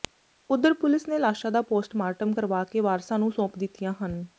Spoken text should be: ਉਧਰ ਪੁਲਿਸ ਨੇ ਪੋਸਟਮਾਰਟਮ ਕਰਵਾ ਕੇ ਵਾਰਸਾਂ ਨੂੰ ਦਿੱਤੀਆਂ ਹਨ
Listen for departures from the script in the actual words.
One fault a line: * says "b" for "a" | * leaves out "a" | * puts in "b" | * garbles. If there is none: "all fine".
* puts in "ਲਾਸ਼ਾਂ ਦਾ"
* puts in "ਸੌਂਪ"